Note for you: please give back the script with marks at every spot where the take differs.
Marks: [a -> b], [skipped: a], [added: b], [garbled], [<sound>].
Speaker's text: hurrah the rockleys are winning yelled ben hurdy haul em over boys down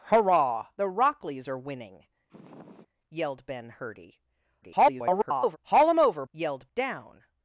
hurrah the rockleys are winning [sniff] yelled ben hurdy [garbled] haul em over [boys -> yelled] down